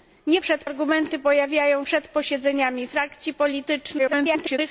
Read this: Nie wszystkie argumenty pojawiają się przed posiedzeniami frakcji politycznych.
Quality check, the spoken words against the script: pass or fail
fail